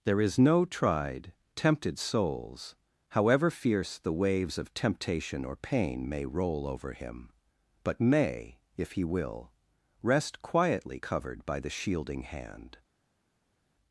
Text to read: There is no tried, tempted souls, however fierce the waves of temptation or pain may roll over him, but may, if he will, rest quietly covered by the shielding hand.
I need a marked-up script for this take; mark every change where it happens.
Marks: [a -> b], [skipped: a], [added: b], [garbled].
There is no tried, tempted souls, however fierce the waves of temptation or pain may roll over him, but may, if he will, rest quietly covered by the shielding hand.